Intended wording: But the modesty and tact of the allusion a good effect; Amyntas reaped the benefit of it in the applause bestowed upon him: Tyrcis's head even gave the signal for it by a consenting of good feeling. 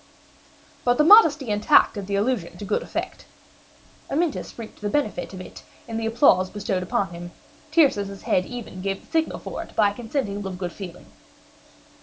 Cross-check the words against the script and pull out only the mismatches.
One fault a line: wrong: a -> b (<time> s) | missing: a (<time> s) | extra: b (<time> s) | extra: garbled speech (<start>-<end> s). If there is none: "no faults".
no faults